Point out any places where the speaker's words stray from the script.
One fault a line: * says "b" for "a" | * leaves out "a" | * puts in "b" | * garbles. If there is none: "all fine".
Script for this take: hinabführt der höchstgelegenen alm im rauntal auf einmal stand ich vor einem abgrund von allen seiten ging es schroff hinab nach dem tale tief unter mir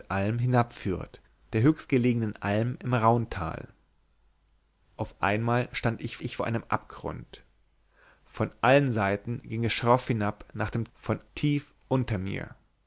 * puts in "ich"
* says "von" for "tale"